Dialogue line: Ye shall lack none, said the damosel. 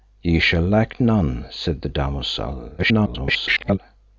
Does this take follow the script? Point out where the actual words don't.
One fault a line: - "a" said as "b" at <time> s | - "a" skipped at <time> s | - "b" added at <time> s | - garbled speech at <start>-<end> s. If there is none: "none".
- garbled speech at 2.8-3.8 s